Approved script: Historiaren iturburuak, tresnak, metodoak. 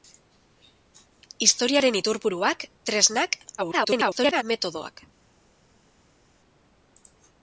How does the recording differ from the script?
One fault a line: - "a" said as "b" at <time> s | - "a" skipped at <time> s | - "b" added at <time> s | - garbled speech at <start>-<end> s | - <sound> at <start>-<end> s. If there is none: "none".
- garbled speech at 3.6-4.4 s